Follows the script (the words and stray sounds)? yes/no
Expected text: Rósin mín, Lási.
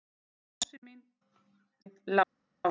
yes